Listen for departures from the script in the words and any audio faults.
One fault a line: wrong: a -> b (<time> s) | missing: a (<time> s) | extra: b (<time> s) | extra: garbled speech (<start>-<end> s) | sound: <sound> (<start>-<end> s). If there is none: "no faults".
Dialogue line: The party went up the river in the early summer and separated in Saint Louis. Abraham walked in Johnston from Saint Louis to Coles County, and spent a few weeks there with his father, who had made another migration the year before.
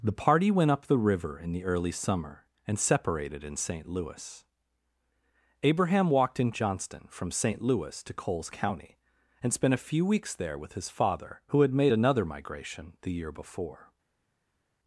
no faults